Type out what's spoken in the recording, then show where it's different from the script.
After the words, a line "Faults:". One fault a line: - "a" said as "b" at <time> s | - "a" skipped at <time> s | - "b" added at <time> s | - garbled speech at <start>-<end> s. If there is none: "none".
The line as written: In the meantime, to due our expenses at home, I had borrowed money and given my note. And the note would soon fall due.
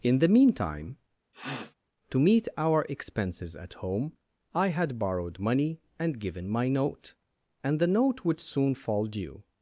In the meantime, to meet our expenses at home, I had borrowed money and given my note. And the note would soon fall due.
Faults:
- "due" said as "meet" at 2.2 s